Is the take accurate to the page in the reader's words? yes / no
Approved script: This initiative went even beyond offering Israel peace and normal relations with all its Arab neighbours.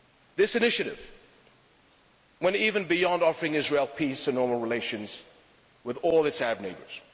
yes